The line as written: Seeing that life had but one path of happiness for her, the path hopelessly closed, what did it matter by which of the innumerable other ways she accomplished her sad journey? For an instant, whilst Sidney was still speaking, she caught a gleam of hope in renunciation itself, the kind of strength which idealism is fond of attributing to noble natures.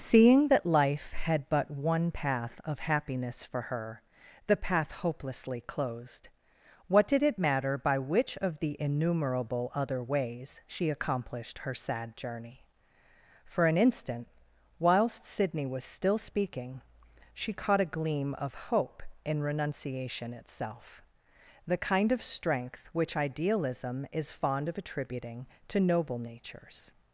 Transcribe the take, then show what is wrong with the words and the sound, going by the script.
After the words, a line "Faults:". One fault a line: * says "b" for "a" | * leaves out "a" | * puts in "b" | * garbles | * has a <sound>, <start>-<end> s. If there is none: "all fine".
Seeing that life had but one path of happiness for her, the path hopelessly closed, what did it matter by which of the innumerable other ways she accomplished her sad journey? For an instant, whilst Sidney was still speaking, she caught a gleam of hope in renunciation itself, the kind of strength which idealism is fond of attributing to noble natures.
Faults:
all fine